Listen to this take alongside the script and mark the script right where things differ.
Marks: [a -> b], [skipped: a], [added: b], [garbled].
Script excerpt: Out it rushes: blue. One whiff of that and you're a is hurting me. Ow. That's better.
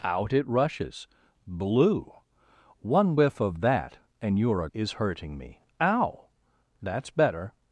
Out it rushes: blue. One whiff of that and you're a is hurting me. Ow. That's better.